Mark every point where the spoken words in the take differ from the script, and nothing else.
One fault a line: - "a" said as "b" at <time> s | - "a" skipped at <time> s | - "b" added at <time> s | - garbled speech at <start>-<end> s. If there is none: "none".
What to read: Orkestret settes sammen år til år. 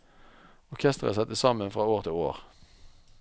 - "fra" added at 1.7 s